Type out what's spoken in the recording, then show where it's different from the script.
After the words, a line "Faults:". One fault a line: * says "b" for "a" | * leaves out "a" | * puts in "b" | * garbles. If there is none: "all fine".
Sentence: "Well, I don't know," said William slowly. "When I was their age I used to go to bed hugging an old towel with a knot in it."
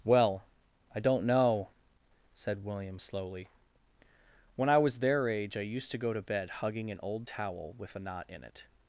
"Well, I don't know," said William slowly. "When I was their age I used to go to bed hugging an old towel with a knot in it."
Faults:
all fine